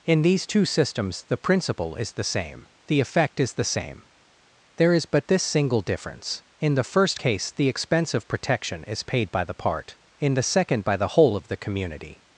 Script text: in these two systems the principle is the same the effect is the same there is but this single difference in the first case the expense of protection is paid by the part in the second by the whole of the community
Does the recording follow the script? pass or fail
pass